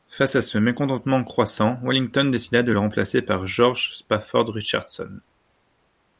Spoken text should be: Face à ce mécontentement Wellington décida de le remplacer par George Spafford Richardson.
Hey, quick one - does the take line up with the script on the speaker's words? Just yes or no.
no